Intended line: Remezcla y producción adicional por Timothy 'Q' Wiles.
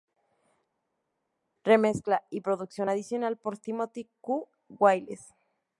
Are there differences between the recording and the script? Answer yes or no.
no